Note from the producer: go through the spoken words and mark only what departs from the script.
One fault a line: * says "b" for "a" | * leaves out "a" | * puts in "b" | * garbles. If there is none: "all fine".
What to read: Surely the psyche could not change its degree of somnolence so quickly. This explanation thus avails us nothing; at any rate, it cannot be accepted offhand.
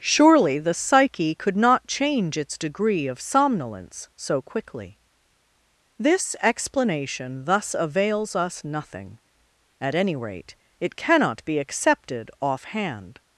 all fine